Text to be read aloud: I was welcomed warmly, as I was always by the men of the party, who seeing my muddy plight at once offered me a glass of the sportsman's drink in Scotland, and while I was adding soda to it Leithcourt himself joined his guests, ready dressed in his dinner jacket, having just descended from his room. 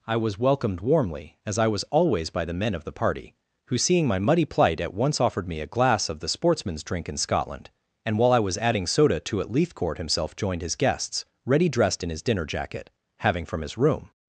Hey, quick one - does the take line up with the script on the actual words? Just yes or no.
no